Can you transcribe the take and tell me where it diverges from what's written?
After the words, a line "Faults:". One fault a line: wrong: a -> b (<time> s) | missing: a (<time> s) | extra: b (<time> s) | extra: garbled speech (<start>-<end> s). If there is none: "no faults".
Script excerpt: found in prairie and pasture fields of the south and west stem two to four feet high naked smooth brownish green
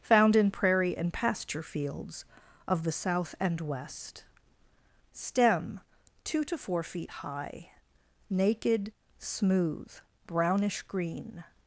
found in prairie and pasture fields of the south and west stem two to four feet high naked smooth brownish green
Faults:
no faults